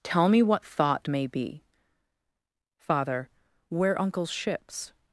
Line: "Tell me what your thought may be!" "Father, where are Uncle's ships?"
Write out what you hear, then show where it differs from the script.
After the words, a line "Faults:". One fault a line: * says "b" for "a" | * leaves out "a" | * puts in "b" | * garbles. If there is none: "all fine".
"Tell me what thought may be!" "Father, where Uncle's ships?"
Faults:
* leaves out "your"
* leaves out "are"